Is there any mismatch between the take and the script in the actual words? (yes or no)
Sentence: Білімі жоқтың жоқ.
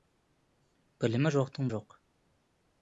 no